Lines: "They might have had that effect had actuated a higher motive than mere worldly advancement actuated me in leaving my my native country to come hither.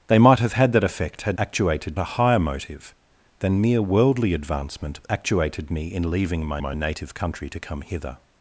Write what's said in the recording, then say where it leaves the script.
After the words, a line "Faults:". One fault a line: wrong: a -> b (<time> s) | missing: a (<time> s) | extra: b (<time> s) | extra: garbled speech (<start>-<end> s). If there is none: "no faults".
"They might have had that effect had actuated a higher motive than mere worldly advancement actuated me in leaving my my native country to come hither.
Faults:
no faults